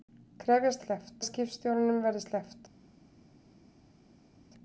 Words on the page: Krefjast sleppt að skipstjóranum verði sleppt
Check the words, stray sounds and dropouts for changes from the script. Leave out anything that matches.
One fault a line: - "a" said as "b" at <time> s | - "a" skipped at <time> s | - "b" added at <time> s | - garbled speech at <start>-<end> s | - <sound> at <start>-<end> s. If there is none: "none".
none